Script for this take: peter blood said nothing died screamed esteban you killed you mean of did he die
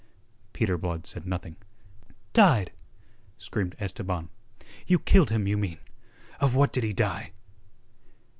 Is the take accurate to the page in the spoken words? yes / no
no